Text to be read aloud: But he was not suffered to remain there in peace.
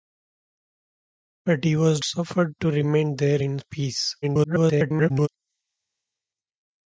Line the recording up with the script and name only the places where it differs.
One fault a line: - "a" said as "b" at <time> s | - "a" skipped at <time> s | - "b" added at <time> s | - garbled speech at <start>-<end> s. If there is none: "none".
- "not" skipped at 2.0 s
- garbled speech at 4.2-5.3 s